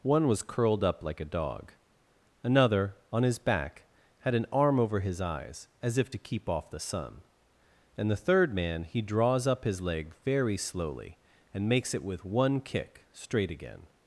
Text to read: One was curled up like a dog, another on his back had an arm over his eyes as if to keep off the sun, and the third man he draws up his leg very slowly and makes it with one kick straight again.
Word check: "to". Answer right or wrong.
right